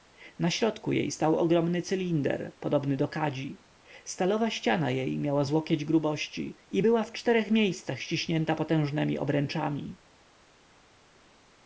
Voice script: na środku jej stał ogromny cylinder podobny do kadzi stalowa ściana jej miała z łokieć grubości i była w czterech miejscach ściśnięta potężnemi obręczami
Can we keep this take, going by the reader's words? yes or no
yes